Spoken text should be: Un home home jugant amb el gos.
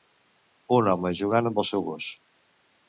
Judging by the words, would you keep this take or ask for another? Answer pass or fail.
fail